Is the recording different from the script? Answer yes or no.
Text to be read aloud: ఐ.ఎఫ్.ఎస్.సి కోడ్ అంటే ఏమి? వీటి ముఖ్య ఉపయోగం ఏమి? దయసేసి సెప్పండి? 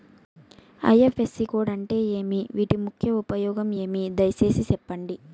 no